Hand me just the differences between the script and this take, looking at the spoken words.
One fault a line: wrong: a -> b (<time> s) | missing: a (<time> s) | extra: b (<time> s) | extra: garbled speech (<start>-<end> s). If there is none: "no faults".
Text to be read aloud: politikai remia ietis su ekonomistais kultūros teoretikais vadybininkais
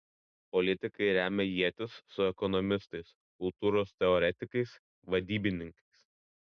no faults